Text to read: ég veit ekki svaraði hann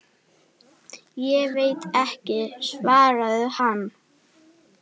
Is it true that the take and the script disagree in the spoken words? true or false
false